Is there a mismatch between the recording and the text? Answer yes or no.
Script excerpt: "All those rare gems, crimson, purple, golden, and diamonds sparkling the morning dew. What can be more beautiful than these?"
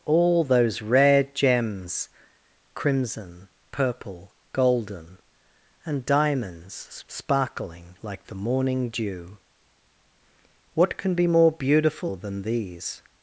yes